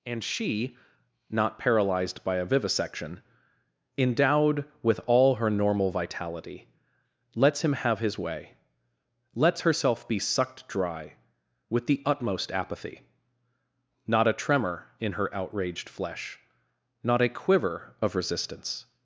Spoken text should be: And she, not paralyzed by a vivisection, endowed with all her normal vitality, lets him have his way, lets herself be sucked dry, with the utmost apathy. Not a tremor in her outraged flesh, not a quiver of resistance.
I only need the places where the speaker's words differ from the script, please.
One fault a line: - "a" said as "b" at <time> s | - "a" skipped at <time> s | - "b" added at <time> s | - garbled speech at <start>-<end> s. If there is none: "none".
none